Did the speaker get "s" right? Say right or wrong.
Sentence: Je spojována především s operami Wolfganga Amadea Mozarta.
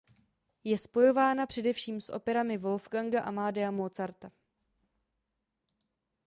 right